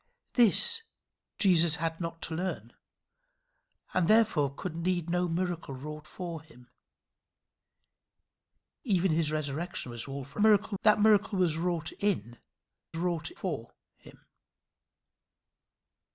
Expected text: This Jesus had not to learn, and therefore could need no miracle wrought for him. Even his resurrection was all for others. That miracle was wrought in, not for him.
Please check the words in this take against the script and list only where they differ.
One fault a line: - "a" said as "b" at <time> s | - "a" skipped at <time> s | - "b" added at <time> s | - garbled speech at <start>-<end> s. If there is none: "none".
- "others" said as "miracle" at 10.4 s
- "not" said as "wrought" at 13.0 s